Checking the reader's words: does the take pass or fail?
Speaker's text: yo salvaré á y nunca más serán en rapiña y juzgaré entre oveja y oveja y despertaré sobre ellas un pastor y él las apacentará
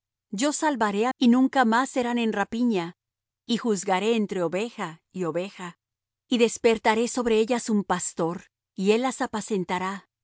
pass